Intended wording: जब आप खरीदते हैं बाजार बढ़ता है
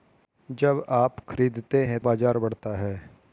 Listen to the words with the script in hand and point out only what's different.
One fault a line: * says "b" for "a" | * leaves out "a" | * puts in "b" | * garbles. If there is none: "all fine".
all fine